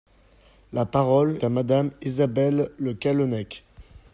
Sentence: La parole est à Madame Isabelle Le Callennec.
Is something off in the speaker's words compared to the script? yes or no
yes